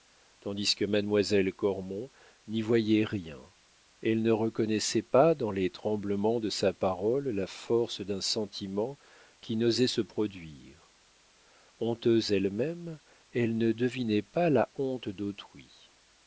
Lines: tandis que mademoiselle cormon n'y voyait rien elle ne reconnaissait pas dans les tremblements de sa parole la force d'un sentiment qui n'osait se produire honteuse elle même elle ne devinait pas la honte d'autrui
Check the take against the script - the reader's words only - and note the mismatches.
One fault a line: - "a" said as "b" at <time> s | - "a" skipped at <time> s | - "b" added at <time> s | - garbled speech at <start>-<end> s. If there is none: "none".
none